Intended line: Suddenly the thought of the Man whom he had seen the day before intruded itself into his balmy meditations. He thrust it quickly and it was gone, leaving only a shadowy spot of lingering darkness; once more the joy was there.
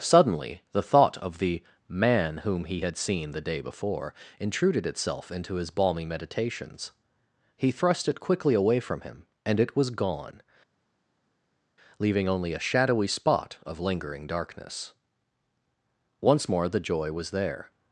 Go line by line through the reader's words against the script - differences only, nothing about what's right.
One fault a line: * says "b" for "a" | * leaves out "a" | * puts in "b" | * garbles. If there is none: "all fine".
* puts in "away from him"